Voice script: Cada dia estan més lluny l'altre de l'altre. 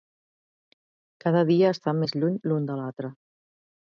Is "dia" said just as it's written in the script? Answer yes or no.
yes